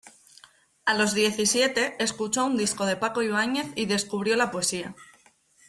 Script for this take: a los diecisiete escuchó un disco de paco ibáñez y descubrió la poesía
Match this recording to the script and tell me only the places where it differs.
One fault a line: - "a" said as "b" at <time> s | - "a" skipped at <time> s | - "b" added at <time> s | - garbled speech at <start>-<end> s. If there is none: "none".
none